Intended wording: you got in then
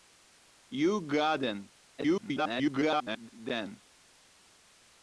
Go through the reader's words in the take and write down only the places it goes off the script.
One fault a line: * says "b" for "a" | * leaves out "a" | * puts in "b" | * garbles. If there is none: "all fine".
* garbles